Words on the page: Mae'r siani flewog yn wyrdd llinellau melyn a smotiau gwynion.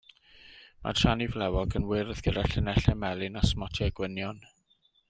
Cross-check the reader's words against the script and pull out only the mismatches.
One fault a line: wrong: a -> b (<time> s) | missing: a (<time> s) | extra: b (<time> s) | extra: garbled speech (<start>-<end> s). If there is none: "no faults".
extra: gyda (2.3 s)